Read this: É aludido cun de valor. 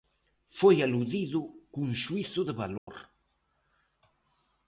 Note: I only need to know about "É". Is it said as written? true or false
false